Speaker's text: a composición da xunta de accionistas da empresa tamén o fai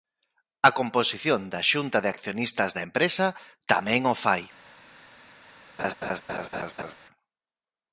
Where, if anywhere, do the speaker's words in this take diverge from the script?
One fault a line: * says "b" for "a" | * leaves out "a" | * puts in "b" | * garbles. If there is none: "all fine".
all fine